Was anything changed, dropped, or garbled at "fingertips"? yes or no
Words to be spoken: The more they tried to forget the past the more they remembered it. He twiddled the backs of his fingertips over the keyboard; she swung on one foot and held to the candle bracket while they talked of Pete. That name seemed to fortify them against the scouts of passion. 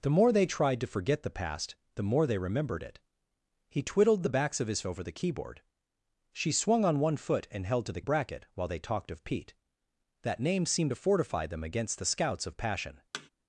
yes